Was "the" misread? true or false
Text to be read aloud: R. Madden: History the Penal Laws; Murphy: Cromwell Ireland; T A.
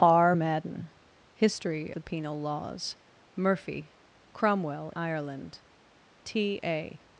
false